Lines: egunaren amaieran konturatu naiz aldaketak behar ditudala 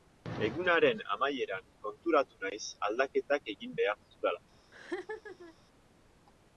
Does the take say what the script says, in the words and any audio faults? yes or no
no